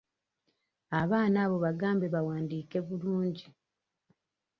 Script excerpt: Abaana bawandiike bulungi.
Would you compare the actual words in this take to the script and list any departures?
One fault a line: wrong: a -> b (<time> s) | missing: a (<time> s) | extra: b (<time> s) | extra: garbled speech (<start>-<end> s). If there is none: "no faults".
extra: abo bagambe (1.4 s)